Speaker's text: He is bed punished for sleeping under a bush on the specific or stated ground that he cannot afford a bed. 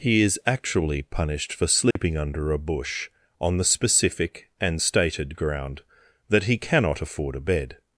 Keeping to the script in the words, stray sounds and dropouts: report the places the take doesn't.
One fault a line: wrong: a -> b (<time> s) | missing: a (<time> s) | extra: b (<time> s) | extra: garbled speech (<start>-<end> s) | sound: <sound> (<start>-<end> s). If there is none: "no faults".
wrong: bed -> actually (0.5 s)
sound: dropout (1.9-2.0 s)
wrong: or -> and (4.6 s)